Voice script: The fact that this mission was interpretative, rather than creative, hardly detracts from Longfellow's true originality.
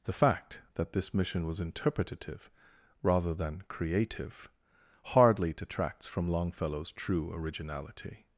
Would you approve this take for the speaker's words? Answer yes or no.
yes